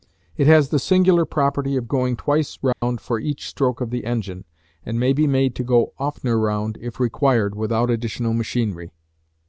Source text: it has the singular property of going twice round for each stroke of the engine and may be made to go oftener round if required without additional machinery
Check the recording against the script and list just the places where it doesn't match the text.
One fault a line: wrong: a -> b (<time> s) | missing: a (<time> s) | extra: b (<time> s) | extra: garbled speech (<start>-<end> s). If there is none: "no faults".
no faults